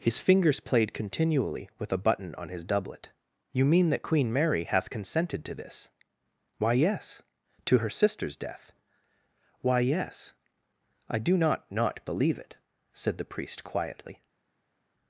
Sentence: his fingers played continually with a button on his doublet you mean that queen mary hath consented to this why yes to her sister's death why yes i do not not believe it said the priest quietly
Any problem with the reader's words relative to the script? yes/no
no